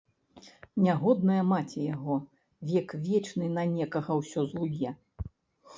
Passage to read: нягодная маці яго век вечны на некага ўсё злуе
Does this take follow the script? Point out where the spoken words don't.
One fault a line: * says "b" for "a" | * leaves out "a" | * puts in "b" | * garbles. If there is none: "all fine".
all fine